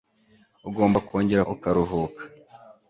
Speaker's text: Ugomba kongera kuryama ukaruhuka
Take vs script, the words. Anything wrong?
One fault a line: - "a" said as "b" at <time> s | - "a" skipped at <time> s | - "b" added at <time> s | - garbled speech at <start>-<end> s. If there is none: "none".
- "kuryama" skipped at 1.4 s